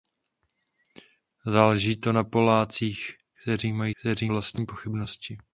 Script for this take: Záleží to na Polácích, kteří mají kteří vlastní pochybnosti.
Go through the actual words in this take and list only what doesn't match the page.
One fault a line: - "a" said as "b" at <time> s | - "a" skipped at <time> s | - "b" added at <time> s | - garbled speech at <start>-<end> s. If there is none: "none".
none